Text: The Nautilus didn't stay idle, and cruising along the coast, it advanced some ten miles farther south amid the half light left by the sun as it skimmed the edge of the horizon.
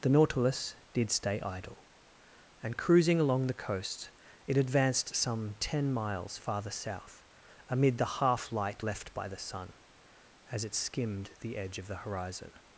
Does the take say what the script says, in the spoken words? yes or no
no